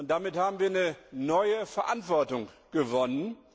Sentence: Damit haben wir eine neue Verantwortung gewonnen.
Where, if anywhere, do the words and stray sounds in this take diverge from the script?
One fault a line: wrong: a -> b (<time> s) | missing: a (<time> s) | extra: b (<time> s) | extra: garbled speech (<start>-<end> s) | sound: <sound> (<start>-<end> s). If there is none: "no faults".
no faults